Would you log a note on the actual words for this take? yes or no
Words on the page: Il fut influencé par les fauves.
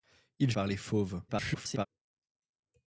yes